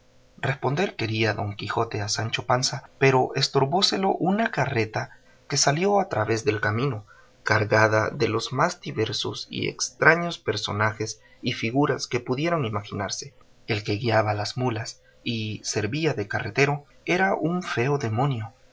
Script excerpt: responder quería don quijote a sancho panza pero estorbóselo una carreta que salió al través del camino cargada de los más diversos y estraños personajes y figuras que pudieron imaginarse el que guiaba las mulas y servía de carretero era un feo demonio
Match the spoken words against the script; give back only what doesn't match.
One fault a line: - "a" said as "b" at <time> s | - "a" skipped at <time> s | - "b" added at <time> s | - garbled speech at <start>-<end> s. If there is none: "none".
none